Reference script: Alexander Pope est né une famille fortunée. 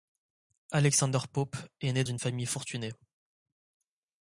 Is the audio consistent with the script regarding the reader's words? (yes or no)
yes